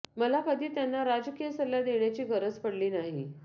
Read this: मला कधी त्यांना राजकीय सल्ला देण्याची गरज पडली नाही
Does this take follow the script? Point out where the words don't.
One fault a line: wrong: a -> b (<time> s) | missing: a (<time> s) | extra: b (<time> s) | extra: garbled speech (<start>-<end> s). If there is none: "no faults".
no faults